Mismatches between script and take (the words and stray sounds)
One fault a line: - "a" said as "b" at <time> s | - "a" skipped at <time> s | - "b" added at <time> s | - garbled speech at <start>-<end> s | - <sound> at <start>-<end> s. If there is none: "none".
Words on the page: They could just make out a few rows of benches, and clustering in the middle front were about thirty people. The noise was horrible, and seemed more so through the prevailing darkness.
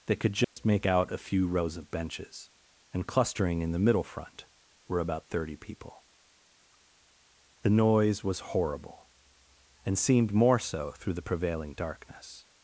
- dropout at 0.4-0.6 s